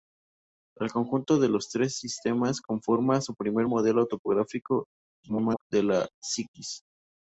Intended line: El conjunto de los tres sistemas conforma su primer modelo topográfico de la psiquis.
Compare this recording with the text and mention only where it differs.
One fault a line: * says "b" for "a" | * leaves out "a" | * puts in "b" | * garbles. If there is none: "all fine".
* garbles